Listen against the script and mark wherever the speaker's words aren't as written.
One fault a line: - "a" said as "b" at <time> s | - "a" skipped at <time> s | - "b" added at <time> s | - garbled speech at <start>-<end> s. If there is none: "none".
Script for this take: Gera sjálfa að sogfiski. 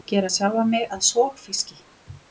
- "mig" added at 0.7 s